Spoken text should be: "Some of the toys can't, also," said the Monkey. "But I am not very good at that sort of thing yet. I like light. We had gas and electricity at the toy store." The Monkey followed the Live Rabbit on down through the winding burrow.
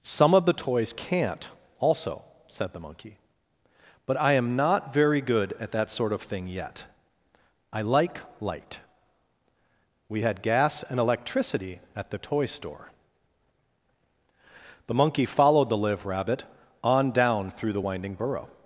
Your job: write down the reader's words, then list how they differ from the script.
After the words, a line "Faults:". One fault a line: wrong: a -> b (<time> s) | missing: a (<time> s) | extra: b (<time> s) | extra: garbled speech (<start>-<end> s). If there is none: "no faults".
"Some of the toys can't, also," said the Monkey. "But I am not very good at that sort of thing yet. I like light. We had gas and electricity at the toy store." The Monkey followed the Live Rabbit on down through the winding burrow.
Faults:
no faults